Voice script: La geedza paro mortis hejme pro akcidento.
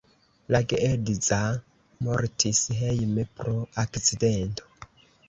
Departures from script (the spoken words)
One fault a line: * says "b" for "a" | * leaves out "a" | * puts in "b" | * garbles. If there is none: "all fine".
* leaves out "paro"